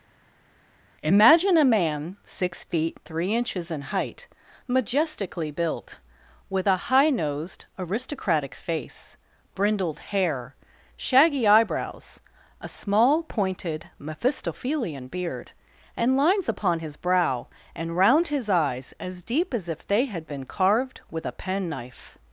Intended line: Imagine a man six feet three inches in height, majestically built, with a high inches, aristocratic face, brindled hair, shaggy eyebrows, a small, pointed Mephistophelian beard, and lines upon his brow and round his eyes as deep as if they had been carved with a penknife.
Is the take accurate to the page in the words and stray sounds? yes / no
no